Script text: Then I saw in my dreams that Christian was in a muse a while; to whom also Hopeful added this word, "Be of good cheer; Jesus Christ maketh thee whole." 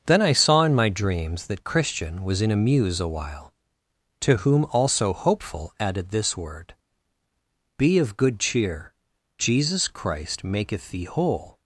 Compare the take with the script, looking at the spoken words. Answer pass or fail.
pass